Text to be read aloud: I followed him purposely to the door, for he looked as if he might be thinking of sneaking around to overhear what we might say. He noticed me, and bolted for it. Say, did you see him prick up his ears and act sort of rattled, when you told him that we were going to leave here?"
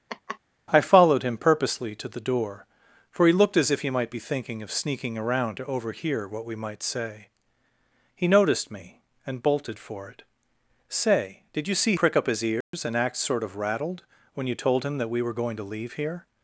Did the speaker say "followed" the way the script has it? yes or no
yes